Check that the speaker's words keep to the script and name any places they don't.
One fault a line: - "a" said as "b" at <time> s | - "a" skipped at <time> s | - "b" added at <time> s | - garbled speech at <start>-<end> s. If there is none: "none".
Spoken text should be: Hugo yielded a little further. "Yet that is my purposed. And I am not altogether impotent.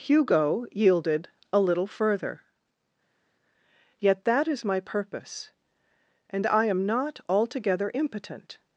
- "purposed" said as "purpose" at 4.8 s